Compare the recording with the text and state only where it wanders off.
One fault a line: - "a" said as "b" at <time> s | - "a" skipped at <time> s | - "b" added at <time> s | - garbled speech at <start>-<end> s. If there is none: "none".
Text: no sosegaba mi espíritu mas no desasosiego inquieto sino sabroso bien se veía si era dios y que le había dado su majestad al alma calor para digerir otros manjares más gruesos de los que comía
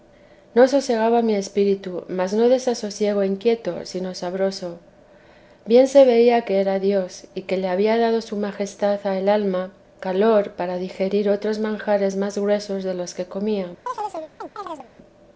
- "si" said as "que" at 6.4 s